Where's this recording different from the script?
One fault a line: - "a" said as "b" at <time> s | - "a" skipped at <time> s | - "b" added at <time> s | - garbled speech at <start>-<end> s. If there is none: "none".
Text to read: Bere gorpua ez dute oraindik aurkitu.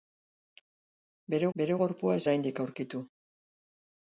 - "bere" added at 1.6 s
- "dute" skipped at 2.3 s